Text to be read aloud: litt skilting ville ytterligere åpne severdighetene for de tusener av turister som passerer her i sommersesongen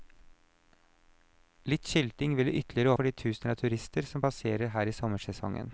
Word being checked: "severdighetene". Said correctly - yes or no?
no